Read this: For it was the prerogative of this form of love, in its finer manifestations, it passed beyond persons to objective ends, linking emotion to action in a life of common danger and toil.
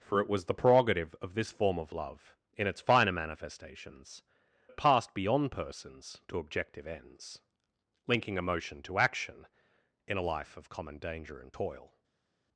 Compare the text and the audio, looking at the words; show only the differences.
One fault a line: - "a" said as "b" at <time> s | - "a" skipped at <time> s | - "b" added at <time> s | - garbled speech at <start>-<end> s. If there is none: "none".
none